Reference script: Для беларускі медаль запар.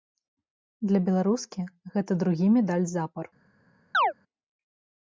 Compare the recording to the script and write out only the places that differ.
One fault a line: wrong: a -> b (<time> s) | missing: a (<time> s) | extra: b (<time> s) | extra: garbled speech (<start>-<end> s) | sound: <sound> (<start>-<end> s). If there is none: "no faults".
extra: гэта другі (2.0 s)
sound: chirp (3.9-4.1 s)